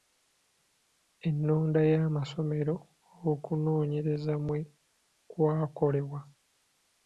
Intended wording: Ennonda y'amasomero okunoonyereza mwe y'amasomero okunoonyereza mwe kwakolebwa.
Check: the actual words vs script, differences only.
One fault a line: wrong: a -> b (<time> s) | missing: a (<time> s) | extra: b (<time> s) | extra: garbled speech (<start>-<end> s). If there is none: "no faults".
missing: y'amasomero okunoonyereza mwe (4.6 s)